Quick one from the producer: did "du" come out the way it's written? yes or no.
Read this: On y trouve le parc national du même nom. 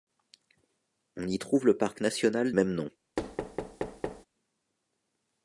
no